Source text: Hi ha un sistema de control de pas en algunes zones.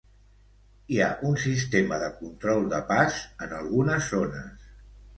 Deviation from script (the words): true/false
false